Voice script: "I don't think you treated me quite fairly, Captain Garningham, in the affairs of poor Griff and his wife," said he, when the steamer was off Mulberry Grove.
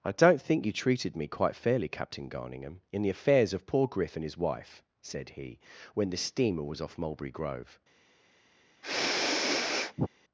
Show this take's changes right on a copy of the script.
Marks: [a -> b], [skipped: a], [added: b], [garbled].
"I don't think you treated me quite fairly, Captain Garningham, in the affairs of poor Griff and his wife," said he, when the steamer was off Mulberry Grove.